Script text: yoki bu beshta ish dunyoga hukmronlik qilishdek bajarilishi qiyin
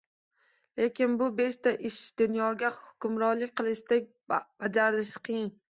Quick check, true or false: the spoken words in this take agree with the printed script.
false